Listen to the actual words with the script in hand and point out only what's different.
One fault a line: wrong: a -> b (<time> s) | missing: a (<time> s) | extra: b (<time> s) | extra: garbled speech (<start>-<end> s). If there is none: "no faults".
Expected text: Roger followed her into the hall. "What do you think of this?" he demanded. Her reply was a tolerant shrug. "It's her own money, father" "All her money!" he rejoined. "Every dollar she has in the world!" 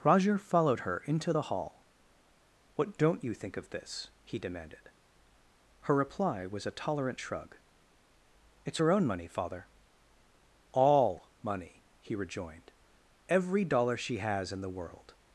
wrong: do -> don't (3.0 s)
missing: her (11.3 s)